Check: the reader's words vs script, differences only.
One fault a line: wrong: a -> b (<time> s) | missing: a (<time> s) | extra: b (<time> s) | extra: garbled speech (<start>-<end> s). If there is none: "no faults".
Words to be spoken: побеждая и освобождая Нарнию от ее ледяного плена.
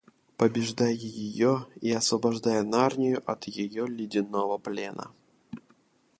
extra: ее (0.9 s)